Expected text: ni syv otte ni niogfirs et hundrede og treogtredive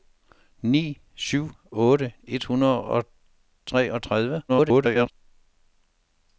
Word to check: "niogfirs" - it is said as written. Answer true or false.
false